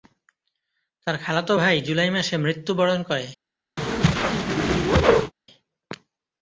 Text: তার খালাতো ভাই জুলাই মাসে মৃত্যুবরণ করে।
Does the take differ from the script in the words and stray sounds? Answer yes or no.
yes